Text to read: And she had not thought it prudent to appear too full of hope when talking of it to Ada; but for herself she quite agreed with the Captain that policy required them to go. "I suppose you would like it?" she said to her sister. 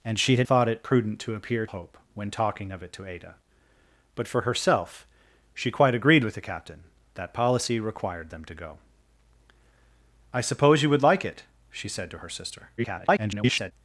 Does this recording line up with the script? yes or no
no